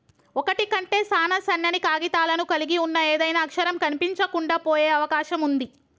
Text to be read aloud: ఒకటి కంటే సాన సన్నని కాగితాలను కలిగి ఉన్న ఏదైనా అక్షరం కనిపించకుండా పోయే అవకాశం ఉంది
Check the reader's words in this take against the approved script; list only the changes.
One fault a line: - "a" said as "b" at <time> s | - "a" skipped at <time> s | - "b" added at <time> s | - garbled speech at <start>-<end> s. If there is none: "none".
none